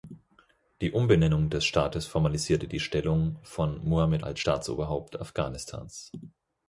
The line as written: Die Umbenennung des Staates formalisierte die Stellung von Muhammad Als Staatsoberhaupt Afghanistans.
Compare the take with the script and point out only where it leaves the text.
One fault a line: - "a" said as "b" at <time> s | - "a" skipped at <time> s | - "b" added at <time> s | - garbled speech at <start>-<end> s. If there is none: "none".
none